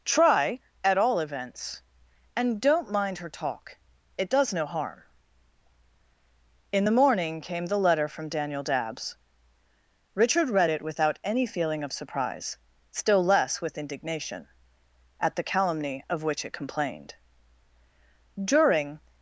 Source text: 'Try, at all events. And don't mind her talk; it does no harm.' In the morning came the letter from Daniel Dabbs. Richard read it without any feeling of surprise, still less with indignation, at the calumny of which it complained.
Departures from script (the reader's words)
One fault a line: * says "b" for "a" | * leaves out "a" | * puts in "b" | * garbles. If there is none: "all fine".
* puts in "During"